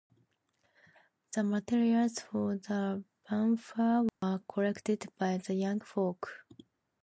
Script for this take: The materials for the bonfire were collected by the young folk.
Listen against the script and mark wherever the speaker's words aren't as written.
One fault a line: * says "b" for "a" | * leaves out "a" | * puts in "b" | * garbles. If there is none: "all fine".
all fine